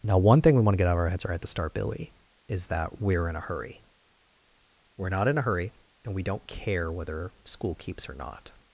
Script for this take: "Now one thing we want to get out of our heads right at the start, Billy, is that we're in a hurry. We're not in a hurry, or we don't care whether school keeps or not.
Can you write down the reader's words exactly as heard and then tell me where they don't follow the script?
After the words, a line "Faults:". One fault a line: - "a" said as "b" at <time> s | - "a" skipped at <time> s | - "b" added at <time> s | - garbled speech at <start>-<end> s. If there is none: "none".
"Now one thing we want to get out of our heads right at the start, Billy, is that we're in a hurry. We're not in a hurry, and we don't care whether school keeps or not.
Faults:
- "or" said as "and" at 6.0 s